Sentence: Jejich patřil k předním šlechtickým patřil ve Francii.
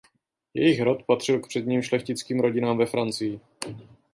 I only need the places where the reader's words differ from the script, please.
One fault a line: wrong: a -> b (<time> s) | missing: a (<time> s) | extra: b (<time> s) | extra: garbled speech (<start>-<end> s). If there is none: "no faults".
extra: rod (0.8 s)
wrong: patřil -> rodinám (2.4 s)